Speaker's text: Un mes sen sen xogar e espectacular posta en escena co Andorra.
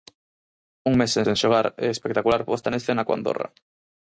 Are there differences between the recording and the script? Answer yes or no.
no